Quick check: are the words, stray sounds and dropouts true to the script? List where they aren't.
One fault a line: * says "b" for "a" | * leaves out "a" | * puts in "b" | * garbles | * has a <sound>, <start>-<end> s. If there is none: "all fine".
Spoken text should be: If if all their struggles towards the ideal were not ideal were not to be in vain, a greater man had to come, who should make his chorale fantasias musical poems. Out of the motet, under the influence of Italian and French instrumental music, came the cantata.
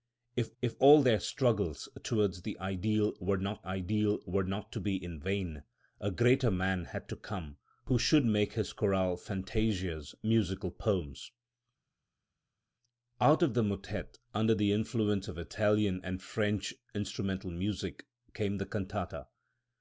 all fine